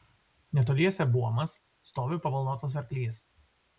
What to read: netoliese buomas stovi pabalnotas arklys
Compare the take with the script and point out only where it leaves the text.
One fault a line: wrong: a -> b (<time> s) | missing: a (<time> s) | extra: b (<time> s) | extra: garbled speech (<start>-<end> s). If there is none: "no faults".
no faults